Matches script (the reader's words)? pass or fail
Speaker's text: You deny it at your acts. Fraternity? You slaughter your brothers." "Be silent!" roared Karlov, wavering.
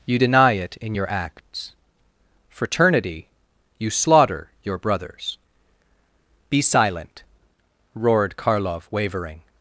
fail